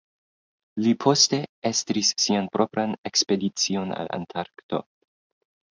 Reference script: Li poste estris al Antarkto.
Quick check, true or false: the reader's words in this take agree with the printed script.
false